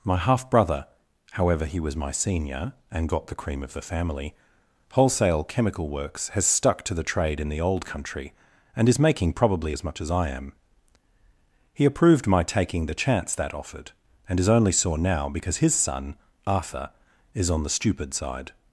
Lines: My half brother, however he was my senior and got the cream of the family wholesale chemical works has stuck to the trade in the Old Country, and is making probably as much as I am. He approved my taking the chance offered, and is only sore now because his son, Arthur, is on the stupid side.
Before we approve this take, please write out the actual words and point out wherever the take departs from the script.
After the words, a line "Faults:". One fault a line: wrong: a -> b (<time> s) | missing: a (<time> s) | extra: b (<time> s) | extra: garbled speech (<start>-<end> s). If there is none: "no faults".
My half brother, however he was my senior and got the cream of the family wholesale chemical works has stuck to the trade in the Old Country, and is making probably as much as I am. He approved my taking the chance that offered, and is only sore now because his son, Arthur, is on the stupid side.
Faults:
extra: that (13.3 s)